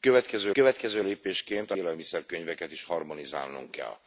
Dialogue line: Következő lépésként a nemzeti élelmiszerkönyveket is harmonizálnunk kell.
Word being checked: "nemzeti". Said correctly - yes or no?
no